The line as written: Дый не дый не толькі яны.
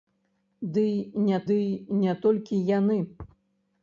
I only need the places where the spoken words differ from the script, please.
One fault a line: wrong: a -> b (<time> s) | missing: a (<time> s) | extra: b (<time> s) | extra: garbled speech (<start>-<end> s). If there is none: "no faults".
no faults